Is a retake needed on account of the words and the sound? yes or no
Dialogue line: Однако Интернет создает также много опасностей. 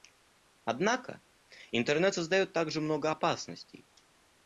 no